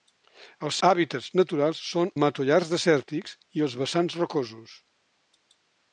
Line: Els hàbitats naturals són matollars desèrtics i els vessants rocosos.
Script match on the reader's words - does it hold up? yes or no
yes